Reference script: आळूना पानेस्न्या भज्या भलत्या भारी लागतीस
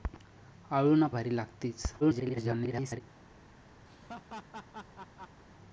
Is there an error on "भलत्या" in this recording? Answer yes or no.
yes